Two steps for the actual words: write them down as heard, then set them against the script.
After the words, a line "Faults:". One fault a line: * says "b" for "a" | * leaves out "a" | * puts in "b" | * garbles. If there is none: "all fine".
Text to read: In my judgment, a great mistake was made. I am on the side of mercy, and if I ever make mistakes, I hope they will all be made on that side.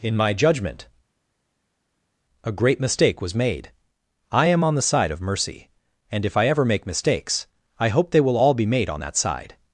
In my judgment, a great mistake was made. I am on the side of mercy, and if I ever make mistakes, I hope they will all be made on that side.
Faults:
all fine